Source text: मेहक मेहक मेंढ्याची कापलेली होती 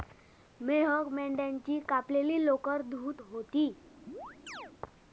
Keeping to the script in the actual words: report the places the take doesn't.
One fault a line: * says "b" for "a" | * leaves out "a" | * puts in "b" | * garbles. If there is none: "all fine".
* leaves out "मेहक"
* puts in "लोकर धुत"